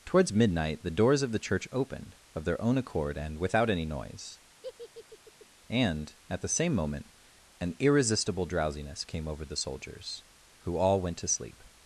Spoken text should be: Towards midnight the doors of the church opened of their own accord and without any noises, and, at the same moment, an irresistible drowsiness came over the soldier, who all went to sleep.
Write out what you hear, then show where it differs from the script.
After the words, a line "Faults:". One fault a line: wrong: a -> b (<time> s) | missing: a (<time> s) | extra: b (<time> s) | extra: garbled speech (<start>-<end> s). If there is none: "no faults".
Towards midnight the doors of the church opened of their own accord and without any noise, and, at the same moment, an irresistible drowsiness came over the soldiers, who all went to sleep.
Faults:
wrong: noises -> noise (3.9 s)
wrong: soldier -> soldiers (9.6 s)